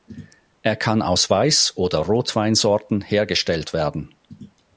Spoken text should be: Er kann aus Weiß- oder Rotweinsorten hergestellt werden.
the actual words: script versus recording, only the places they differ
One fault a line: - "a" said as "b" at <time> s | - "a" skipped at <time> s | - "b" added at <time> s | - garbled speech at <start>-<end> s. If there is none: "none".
none